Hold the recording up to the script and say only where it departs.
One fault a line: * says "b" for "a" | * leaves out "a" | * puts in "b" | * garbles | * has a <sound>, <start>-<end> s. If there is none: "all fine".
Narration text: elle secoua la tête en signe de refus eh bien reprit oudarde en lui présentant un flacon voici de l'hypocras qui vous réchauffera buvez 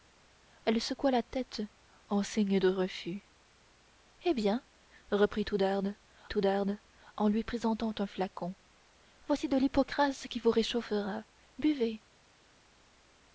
* puts in "oudarde"